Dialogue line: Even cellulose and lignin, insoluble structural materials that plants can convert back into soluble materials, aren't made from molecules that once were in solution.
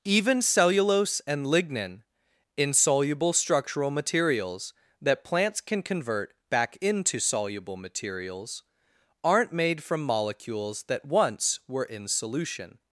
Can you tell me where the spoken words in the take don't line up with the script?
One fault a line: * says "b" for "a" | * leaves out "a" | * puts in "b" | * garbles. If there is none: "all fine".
all fine